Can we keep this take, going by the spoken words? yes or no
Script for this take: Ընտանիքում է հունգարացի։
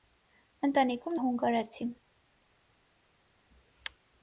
yes